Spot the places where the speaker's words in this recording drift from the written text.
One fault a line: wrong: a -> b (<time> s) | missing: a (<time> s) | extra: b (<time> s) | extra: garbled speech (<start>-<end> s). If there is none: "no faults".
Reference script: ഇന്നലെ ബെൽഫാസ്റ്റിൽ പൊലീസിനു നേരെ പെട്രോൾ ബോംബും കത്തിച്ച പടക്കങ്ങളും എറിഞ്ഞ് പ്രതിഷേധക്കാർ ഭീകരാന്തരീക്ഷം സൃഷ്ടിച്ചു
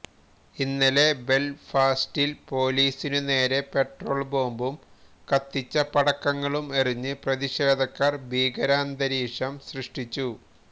no faults